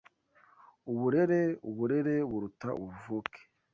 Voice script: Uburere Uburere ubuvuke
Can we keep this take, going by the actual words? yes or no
no